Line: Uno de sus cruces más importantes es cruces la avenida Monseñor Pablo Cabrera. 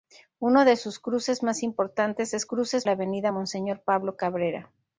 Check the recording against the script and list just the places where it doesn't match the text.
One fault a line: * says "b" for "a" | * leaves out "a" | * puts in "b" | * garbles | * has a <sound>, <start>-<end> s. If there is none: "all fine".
all fine